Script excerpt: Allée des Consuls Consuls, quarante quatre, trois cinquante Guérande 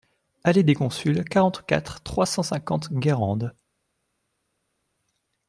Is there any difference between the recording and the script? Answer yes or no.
yes